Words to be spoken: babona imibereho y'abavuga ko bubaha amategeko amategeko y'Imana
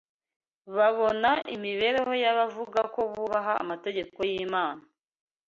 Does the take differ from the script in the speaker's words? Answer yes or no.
yes